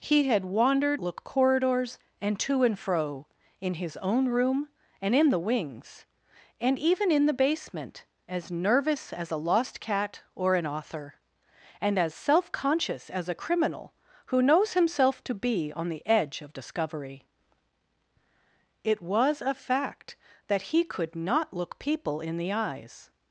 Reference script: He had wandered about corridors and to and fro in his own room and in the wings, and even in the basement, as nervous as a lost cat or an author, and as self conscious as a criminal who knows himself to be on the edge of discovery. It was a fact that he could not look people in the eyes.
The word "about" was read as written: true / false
false